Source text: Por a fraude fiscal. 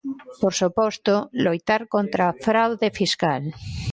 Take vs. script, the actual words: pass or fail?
fail